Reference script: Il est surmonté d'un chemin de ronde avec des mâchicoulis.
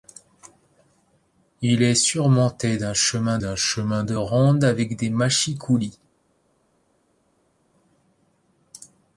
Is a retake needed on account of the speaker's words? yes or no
yes